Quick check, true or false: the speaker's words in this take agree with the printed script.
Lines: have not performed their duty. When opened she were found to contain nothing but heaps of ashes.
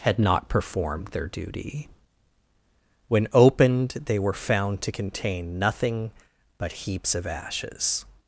false